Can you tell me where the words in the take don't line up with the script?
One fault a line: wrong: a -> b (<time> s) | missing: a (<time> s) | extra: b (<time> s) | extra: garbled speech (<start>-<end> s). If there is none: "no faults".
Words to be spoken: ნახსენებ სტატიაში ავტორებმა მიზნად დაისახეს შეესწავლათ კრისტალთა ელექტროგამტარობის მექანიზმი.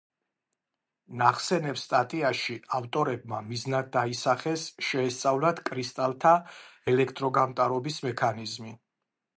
no faults